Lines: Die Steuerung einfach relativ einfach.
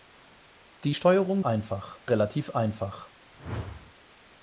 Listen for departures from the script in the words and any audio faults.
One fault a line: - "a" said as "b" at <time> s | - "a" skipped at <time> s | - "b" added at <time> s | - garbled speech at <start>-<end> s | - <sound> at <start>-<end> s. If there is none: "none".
- whoosh at 3.3-3.9 s